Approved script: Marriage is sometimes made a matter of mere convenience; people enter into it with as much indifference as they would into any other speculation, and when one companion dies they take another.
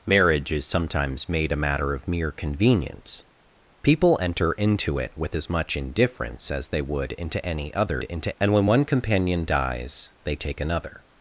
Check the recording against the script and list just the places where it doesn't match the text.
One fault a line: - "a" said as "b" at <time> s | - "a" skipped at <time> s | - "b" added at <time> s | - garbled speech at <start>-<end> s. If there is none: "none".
- "speculation" said as "into" at 8.0 s